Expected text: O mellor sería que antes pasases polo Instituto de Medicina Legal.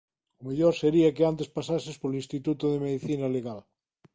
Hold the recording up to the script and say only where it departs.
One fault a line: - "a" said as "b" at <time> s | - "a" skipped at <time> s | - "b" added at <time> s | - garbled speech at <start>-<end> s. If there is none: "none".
none